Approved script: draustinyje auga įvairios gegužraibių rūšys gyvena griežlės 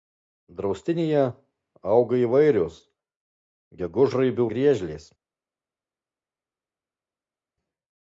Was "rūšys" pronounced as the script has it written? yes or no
no